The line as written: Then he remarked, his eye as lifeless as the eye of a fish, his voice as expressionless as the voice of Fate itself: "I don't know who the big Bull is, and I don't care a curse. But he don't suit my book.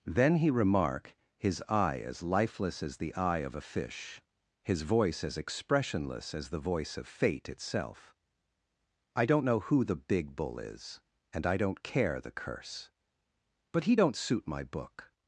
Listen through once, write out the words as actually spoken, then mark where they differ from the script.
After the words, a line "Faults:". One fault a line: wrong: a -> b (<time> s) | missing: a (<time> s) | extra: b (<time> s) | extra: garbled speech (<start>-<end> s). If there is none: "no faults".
Then he remark, his eye as lifeless as the eye of a fish, his voice as expressionless as the voice of Fate itself: "I don't know who the big Bull is, and I don't care the curse. But he don't suit my book.
Faults:
wrong: remarked -> remark (0.5 s)
wrong: a -> the (12.2 s)